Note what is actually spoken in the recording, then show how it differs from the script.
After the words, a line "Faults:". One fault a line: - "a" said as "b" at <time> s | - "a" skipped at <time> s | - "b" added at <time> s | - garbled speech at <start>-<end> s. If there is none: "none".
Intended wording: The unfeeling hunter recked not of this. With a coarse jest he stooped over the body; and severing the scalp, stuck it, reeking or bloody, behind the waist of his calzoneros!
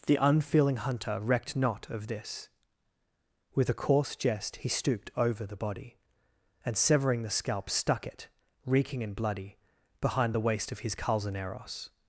The unfeeling hunter recked not of this. With a coarse jest he stooped over the body; and severing the scalp, stuck it, reeking and bloody, behind the waist of his calzoneros!
Faults:
- "or" said as "and" at 9.0 s